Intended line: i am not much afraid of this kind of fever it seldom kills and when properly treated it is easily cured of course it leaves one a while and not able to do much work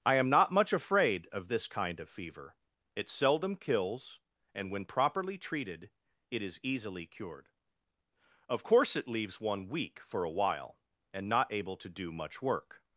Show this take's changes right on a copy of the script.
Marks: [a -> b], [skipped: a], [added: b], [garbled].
i am not much afraid of this kind of fever it seldom kills and when properly treated it is easily cured of course it leaves one [added: weak for] a while and not able to do much work